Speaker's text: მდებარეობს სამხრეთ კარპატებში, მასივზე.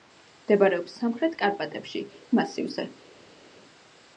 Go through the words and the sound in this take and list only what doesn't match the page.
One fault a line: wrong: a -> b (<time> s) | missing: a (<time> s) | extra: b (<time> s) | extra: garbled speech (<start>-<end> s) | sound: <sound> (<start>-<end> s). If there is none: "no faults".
no faults